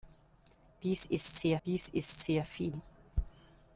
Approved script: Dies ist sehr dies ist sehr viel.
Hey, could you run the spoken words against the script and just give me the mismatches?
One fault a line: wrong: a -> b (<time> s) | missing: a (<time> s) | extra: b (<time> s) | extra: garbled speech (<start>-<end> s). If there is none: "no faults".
no faults